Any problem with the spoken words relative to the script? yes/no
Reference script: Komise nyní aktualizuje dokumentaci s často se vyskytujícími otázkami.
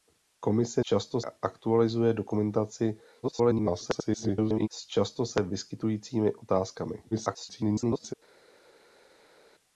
yes